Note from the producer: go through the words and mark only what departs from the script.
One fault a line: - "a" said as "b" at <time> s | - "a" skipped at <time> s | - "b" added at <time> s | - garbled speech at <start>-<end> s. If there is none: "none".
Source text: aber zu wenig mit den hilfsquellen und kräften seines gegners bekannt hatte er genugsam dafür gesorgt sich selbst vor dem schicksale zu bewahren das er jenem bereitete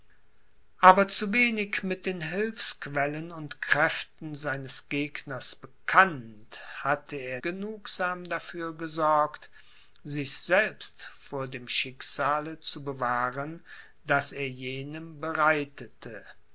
none